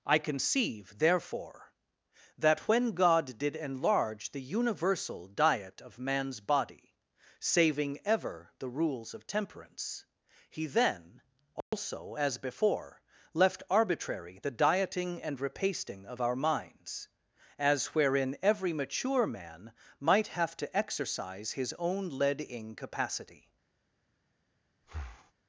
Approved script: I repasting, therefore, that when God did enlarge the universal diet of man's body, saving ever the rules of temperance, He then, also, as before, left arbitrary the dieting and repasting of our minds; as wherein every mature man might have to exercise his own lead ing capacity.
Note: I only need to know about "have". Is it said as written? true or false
true